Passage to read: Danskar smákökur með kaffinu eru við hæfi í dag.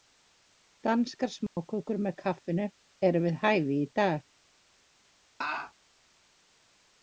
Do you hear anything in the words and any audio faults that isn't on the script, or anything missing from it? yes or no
yes